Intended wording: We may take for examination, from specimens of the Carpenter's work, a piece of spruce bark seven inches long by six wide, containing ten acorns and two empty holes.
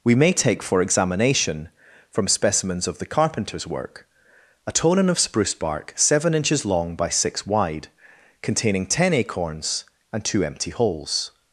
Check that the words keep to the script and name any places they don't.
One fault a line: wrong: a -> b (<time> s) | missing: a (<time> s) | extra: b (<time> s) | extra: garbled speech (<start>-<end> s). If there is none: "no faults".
wrong: piece -> tonin (4.7 s)